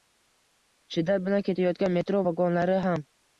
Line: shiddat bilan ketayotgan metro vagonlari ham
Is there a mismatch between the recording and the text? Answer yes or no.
no